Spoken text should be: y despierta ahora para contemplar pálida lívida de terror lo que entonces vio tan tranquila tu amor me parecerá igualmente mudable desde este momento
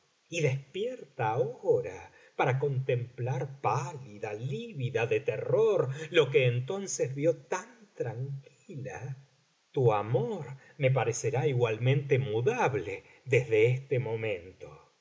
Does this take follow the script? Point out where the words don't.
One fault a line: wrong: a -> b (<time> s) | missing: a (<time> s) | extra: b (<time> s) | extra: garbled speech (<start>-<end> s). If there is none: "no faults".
no faults